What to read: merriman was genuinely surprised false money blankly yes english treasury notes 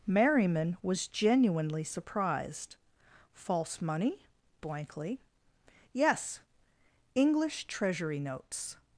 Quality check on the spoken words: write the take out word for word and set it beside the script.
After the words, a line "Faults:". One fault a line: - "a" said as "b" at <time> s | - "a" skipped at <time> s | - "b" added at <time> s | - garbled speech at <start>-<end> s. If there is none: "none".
merriman was genuinely surprised false money blankly yes english treasury notes
Faults:
none